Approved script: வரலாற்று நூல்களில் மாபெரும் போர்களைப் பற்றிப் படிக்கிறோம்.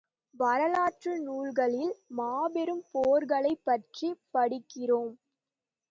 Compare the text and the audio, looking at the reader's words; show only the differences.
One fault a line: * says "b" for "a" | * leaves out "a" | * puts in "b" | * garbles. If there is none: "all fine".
all fine